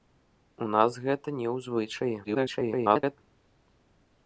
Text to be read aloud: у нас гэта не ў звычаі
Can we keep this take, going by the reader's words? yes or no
no